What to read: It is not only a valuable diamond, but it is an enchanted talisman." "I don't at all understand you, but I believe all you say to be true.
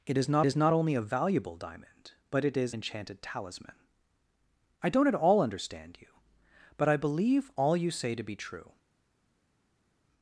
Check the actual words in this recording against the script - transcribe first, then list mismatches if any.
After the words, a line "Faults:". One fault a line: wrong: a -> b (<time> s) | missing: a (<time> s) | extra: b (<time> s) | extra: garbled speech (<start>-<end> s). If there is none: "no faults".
It is not is not only a valuable diamond, but it is enchanted talisman." "I don't at all understand you, but I believe all you say to be true.
Faults:
extra: is not (0.4 s)
missing: an (2.7 s)